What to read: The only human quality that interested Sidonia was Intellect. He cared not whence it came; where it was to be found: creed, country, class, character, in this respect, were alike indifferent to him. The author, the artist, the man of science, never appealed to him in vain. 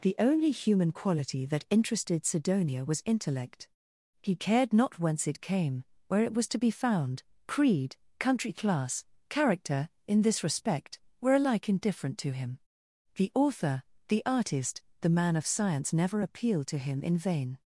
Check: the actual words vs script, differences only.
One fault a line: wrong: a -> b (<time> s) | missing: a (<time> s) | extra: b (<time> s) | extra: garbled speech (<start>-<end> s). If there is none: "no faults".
no faults